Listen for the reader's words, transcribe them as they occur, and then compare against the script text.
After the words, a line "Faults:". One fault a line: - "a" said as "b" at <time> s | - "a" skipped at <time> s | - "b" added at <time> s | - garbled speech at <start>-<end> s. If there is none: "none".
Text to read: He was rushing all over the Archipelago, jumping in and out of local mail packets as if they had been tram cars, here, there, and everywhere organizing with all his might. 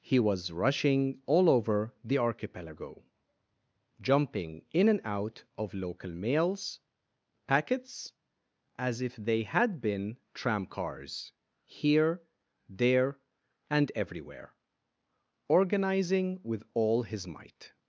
He was rushing all over the Archipelago, jumping in and out of local mails packets as if they had been tram cars, here, there, and everywhere organizing with all his might.
Faults:
- "mail" said as "mails" at 6.1 s